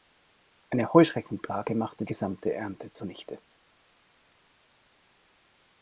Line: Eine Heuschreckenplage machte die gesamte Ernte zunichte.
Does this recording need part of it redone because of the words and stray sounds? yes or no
yes